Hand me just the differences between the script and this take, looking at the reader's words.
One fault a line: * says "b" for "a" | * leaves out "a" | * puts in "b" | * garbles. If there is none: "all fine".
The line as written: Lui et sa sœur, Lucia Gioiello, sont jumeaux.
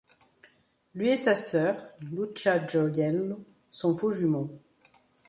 * puts in "faux"